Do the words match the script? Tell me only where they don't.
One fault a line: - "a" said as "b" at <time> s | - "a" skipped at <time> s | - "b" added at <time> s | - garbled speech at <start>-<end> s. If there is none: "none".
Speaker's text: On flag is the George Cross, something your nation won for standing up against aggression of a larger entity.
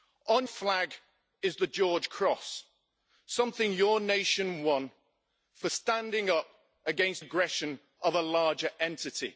none